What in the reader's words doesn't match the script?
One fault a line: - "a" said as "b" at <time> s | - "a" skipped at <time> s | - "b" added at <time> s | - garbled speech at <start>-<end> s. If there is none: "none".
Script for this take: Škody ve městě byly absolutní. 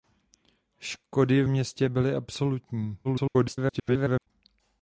- "ve" skipped at 1.4 s
- garbled speech at 3.0-4.3 s